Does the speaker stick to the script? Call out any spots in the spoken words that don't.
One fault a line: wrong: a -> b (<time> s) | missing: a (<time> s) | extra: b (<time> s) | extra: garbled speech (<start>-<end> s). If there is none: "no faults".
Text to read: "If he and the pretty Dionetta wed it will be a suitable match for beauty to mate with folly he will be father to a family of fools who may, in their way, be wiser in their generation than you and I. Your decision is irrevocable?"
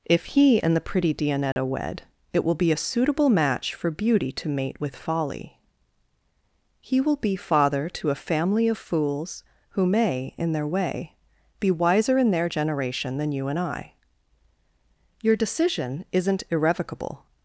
wrong: is -> isn't (16.1 s)